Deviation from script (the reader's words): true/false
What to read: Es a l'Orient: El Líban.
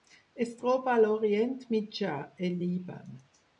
true